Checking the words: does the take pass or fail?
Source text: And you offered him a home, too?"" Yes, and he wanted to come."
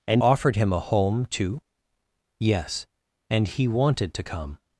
fail